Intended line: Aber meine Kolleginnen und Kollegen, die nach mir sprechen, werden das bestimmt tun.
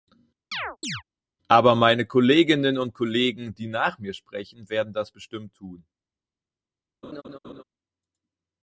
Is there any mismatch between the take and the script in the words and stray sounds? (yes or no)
yes